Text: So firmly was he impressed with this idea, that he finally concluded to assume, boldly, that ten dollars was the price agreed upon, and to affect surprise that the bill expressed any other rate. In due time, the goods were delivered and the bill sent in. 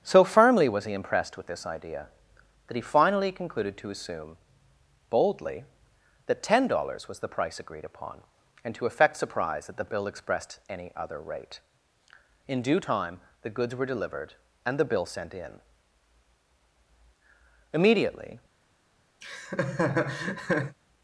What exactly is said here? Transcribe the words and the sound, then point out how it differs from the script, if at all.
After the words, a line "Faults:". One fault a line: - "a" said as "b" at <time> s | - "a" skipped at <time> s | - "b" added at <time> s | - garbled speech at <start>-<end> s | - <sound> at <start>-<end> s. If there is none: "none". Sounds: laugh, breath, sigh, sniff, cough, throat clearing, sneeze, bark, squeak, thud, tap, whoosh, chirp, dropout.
So firmly was he impressed with this idea, that he finally concluded to assume, boldly, that ten dollars was the price agreed upon, and to affect surprise that the bill expressed any other rate. In due time, the goods were delivered and the bill sent in. Immediately
Faults:
- "Immediately" added at 17.7 s
- laugh at 19.2-20.8 s